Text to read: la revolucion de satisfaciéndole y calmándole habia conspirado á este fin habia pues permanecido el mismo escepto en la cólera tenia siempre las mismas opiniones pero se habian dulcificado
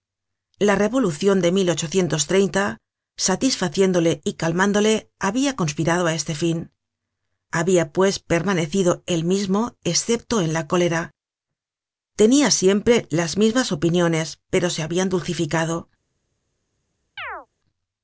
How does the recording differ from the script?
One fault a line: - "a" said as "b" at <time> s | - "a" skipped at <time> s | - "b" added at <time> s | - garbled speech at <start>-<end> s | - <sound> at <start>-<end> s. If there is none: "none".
- chirp at 17.2-17.5 s